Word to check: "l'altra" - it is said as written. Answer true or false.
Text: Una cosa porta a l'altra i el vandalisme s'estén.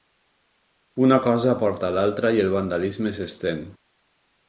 true